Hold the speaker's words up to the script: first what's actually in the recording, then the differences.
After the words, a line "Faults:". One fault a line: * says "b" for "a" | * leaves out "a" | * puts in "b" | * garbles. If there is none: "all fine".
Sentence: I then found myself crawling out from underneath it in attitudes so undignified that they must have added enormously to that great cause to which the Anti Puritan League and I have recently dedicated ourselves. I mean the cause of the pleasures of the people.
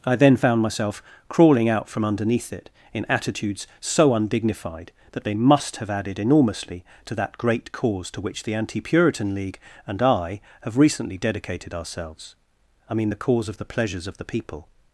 I then found myself crawling out from underneath it in attitudes so undignified that they must have added enormously to that great cause to which the Anti Puritan League and I have recently dedicated ourselves. I mean the cause of the pleasures of the people.
Faults:
all fine